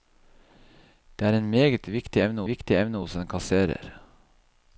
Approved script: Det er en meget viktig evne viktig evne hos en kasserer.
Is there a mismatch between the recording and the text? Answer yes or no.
no